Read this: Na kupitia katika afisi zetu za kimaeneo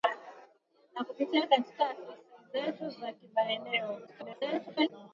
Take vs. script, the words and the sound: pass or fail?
fail